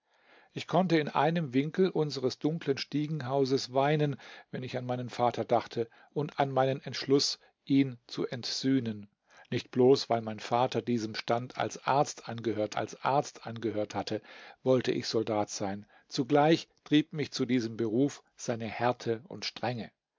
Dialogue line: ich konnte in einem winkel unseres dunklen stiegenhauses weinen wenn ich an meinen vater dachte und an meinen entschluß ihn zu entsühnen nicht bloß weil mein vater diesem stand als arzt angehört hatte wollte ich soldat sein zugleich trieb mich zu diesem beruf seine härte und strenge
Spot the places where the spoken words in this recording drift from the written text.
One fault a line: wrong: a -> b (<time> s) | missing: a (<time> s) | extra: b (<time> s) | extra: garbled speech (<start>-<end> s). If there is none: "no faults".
extra: als arzt angehört (12.8 s)